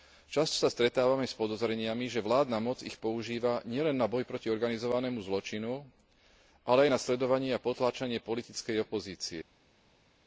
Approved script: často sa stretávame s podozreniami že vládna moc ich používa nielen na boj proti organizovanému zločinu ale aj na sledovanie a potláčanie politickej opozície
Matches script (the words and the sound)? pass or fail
pass